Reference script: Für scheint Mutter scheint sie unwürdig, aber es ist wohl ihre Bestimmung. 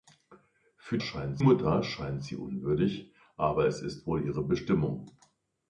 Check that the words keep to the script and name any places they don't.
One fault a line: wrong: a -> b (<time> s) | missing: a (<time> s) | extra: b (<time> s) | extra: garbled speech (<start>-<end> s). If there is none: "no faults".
no faults